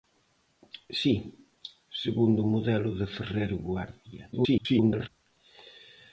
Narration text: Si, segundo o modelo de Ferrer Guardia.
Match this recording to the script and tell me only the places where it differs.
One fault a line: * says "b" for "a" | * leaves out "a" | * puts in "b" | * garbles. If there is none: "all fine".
* garbles